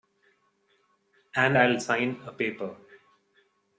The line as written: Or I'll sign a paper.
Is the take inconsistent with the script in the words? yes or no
yes